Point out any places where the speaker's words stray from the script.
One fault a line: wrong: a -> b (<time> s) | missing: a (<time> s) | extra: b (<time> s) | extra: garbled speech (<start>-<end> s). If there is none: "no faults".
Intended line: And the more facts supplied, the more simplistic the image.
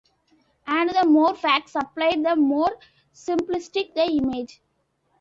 no faults